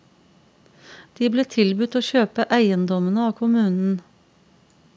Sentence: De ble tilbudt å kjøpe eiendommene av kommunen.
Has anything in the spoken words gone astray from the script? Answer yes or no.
no